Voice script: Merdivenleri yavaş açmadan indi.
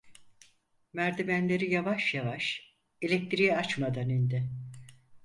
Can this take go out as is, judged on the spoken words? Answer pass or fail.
fail